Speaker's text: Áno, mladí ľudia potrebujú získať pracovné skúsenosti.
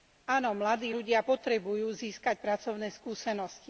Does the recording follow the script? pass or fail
pass